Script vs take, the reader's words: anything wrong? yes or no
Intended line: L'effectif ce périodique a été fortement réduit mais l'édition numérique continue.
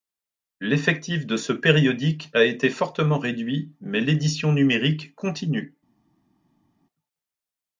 yes